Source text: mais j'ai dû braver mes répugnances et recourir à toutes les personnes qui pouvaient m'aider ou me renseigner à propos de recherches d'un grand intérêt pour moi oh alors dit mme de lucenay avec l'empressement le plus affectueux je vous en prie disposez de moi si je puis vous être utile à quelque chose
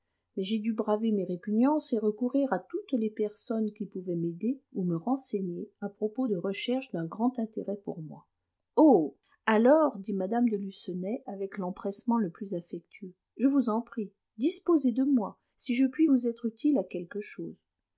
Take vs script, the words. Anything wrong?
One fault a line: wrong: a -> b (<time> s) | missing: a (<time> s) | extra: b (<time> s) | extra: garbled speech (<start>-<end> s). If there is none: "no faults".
no faults